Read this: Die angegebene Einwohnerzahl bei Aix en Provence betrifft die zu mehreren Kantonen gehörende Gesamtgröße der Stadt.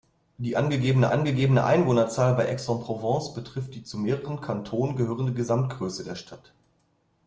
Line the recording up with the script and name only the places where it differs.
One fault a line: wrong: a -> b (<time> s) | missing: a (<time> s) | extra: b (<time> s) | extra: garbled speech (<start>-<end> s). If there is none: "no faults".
extra: angegebene (1.1 s)